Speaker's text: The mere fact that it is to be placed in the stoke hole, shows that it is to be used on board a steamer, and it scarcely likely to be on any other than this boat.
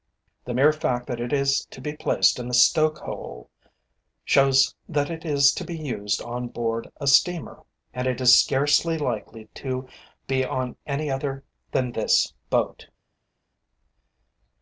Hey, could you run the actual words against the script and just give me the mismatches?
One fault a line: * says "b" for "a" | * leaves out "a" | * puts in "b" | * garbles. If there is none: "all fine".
* puts in "is"